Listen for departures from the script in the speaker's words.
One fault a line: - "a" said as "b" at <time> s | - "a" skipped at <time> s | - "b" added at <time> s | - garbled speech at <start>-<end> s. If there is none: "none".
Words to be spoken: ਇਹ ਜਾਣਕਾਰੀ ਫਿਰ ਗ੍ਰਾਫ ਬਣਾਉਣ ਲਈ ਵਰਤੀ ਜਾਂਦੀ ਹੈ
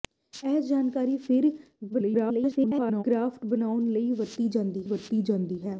- garbled speech at 1.9-3.0 s
- "ਵਰਤੀ ਜਾਂਦੀ" added at 4.8 s